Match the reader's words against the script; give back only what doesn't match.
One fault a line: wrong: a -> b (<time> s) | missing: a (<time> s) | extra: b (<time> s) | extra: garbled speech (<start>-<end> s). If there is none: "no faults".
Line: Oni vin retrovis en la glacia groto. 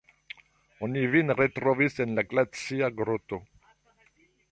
no faults